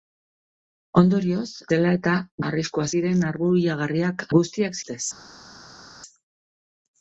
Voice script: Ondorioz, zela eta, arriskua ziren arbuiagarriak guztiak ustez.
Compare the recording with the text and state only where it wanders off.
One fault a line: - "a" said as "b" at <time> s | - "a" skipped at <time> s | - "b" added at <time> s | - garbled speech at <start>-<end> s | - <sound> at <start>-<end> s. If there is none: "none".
none